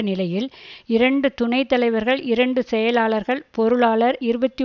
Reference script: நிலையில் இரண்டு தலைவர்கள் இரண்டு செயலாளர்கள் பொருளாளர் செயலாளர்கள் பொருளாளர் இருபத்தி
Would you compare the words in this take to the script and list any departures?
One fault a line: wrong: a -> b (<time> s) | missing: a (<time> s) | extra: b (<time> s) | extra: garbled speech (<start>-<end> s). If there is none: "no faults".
extra: துணை (1.3 s)
missing: செயலாளர்கள் பொருளாளர் (4.2 s)